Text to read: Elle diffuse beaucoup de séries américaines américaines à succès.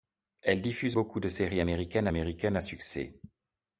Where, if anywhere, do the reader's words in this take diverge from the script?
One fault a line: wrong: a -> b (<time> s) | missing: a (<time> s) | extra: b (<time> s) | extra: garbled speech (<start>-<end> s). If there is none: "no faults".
no faults